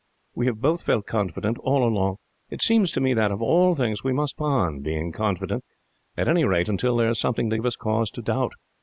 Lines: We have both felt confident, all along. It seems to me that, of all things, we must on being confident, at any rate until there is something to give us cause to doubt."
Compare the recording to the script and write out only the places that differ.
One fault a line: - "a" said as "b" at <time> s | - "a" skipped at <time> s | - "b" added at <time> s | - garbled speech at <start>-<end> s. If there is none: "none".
none